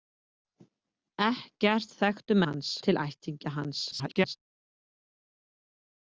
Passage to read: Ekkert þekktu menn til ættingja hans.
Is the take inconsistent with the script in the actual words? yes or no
yes